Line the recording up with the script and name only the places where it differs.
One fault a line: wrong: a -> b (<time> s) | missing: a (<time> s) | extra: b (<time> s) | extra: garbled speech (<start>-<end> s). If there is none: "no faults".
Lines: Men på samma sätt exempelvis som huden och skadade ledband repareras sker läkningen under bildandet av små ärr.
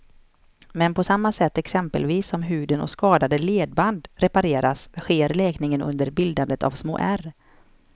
no faults